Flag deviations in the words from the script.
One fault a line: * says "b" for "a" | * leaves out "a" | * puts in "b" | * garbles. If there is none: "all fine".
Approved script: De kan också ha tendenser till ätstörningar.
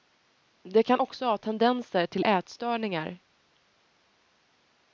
all fine